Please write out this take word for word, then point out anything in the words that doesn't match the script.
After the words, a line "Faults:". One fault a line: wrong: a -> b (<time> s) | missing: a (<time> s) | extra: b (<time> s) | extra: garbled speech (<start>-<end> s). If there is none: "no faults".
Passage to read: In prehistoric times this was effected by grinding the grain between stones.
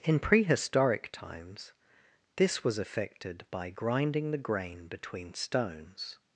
In prehistoric times this was effected by grinding the grain between stones.
Faults:
no faults